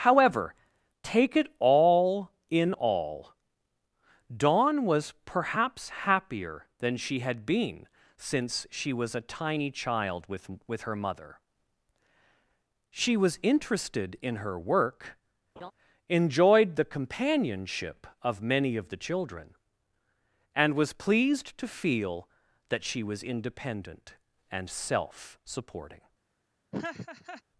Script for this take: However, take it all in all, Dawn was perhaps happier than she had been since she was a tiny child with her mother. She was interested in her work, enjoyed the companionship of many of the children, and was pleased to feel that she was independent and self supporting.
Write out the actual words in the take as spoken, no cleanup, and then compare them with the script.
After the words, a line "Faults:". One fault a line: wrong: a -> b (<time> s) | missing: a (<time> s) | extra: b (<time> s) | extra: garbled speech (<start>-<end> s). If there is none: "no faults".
However, take it all in all, Dawn was perhaps happier than she had been since she was a tiny child with with her mother. She was interested in her work, enjoyed the companionship of many of the children, and was pleased to feel that she was independent and self supporting.
Faults:
extra: with (10.7 s)